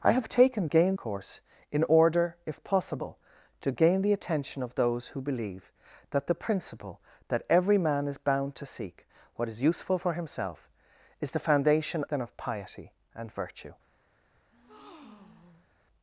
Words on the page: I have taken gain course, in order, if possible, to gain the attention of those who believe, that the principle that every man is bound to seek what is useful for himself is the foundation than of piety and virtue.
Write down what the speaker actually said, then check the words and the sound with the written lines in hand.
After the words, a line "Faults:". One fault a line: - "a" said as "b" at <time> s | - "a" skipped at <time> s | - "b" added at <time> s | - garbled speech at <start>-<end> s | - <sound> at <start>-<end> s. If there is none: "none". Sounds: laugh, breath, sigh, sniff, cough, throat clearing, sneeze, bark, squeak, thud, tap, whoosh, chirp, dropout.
I have taken gain course, in order, if possible, to gain the attention of those who believe, that the principle that every man is bound to seek what is useful for himself is the foundation than of piety and virtue.
Faults:
- breath at 14.5-15.7 s